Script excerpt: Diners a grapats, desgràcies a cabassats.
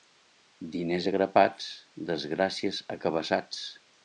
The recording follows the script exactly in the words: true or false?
true